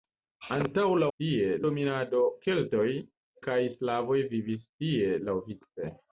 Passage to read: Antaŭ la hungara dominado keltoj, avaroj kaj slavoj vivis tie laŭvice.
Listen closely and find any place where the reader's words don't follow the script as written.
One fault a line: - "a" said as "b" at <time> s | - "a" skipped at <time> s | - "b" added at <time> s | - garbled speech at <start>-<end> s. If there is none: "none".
- "hungara" said as "tie" at 1.1 s
- "avaroj" skipped at 2.9 s